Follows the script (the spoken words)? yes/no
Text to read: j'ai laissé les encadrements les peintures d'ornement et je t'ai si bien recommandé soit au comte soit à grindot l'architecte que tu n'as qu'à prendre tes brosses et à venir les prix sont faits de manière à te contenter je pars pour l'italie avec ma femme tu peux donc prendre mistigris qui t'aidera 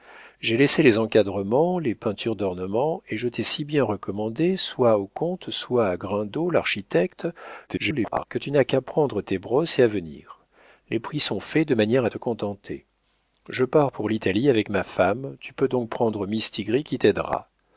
no